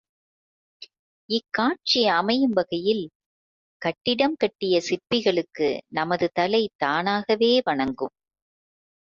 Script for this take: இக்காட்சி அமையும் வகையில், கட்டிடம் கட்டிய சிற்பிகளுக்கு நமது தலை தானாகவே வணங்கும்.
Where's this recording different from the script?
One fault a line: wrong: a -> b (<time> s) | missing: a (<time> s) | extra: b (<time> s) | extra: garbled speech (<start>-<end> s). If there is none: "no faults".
no faults